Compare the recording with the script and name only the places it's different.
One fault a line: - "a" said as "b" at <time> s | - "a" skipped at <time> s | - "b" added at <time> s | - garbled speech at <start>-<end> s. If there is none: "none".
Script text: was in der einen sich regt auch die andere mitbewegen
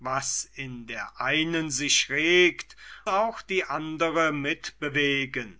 none